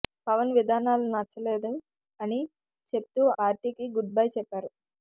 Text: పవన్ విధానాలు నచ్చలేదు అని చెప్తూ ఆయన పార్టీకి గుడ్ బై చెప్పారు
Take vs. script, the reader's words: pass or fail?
fail